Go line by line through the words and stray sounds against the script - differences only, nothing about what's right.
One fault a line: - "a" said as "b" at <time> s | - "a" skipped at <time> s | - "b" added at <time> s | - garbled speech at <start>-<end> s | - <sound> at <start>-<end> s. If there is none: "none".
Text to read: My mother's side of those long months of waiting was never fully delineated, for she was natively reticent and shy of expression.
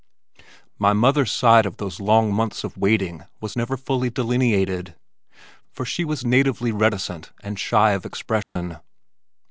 - dropout at 8.4-8.6 s